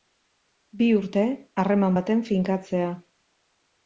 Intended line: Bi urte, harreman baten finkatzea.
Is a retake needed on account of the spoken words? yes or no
no